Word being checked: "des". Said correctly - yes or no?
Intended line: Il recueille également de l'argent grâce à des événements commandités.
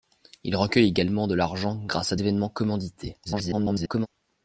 no